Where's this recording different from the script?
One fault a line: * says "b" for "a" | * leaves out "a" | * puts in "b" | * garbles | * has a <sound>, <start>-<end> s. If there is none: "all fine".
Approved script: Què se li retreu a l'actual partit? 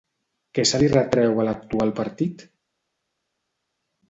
all fine